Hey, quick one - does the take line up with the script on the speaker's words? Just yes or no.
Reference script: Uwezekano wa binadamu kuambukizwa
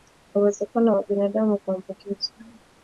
yes